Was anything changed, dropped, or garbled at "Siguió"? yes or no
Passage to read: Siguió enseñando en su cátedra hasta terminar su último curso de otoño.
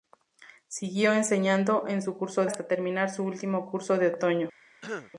no